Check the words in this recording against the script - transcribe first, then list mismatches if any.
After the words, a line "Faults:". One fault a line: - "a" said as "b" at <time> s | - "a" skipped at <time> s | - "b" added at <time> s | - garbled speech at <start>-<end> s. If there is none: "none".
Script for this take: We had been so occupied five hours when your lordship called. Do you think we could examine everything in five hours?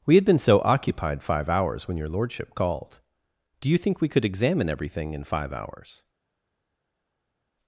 We had been so occupied five hours when your lordship called. Do you think we could examine everything in five hours?
Faults:
none